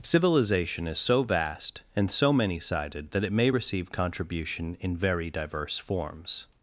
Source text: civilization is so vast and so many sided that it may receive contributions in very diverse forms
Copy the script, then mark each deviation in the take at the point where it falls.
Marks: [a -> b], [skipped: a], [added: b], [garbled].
civilization is so vast and so many sided that it may receive [contributions -> contribution] in very diverse forms